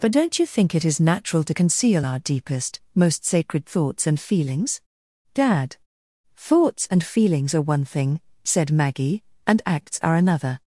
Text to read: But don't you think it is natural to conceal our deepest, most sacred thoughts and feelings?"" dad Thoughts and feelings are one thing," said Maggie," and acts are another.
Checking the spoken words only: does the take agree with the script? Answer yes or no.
yes